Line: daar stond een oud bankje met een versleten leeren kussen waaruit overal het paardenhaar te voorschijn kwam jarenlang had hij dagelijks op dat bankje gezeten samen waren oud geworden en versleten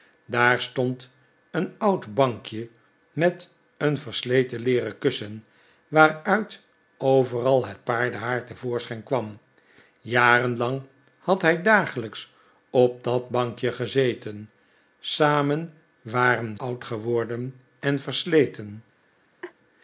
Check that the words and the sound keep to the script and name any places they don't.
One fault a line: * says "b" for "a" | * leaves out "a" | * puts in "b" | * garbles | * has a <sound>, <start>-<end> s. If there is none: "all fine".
* has a laugh, 19.4-19.5 s